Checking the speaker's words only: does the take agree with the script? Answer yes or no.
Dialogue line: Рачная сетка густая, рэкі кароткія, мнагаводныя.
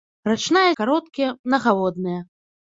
no